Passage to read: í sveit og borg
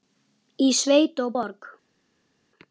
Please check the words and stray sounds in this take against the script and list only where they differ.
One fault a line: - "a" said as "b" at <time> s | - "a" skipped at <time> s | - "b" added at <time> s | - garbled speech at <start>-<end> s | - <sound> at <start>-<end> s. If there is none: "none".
none